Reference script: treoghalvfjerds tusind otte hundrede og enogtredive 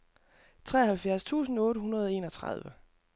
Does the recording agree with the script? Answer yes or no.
yes